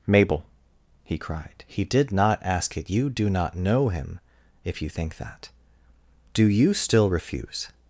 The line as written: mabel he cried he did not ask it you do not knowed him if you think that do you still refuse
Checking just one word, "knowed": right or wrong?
wrong